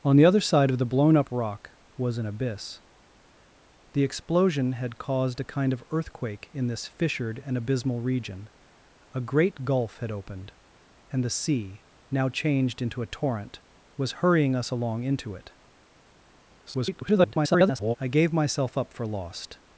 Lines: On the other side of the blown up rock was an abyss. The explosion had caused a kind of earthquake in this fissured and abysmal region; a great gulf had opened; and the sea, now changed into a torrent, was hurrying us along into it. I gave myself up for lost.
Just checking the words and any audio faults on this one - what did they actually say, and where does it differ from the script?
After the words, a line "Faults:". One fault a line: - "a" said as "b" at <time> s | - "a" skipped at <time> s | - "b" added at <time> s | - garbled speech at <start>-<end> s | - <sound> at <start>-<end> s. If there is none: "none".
On the other side of the blown up rock was an abyss. The explosion had caused a kind of earthquake in this fissured and abysmal region; a great gulf had opened; and the sea, now changed into a torrent, was hurrying us along into it. [garbled] I gave myself up for lost.
Faults:
- garbled speech at 16.7-18.0 s